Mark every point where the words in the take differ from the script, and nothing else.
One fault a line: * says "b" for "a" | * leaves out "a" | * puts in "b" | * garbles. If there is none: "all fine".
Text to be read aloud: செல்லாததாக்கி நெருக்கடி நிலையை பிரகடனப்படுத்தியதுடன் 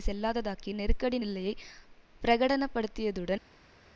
all fine